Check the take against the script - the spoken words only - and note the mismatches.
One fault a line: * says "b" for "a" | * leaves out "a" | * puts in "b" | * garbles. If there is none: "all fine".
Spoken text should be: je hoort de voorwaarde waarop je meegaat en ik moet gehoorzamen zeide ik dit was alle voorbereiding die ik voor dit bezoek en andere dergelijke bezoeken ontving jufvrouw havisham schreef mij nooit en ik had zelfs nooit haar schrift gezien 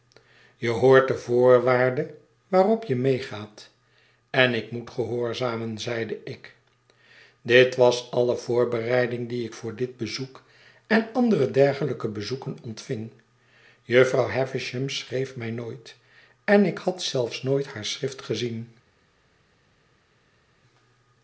all fine